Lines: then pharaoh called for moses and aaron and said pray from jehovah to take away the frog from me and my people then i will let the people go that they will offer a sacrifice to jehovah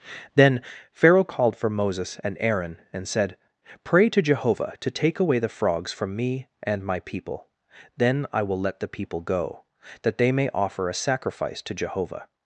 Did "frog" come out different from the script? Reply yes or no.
yes